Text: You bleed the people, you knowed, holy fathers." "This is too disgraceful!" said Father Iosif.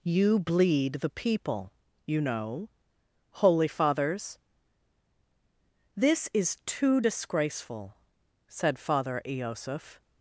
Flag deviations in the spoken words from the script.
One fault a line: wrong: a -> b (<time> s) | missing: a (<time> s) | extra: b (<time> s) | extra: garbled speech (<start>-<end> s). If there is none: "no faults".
wrong: knowed -> know (2.2 s)